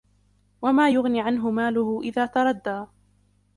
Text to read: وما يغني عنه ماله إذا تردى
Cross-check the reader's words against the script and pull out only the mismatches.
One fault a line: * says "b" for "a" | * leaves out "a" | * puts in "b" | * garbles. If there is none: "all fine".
all fine